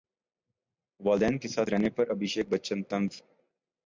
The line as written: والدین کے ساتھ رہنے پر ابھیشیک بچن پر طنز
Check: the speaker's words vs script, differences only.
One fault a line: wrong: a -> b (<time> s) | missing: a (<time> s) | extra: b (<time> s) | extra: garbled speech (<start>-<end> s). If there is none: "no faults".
missing: پر (2.8 s)